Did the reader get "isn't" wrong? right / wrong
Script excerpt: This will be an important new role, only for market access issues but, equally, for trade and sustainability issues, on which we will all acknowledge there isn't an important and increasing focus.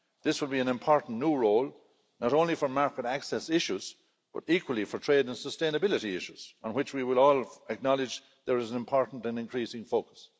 wrong